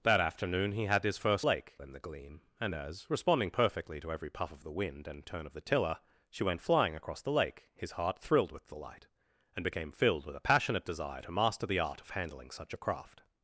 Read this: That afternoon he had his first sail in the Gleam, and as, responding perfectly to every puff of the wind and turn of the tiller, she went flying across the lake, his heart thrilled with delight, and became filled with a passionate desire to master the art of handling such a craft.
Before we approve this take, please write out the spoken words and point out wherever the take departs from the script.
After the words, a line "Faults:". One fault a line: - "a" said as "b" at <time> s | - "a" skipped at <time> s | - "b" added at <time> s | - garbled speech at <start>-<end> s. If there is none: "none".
That afternoon he had his first lake in the Gleam, and as, responding perfectly to every puff of the wind and turn of the tiller, she went flying across the lake, his heart thrilled with delight, and became filled with a passionate desire to master the art of handling such a craft.
Faults:
- "sail" said as "lake" at 1.4 s